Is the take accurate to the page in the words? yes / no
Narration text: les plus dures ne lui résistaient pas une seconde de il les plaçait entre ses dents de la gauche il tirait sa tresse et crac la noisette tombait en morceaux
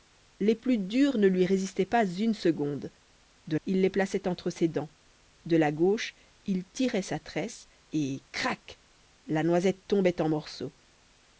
yes